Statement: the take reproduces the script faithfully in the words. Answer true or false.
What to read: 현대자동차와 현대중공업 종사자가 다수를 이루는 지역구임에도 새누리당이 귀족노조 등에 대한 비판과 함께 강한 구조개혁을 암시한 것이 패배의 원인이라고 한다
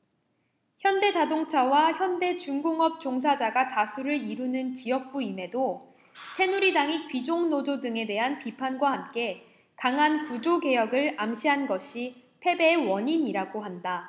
true